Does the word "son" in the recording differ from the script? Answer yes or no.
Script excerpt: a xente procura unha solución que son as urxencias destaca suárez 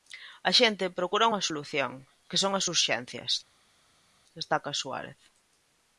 no